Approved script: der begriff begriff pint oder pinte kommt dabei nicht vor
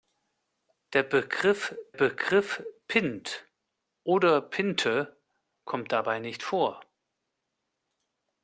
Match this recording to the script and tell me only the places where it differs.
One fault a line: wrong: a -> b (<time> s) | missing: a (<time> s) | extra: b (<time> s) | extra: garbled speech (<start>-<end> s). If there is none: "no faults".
no faults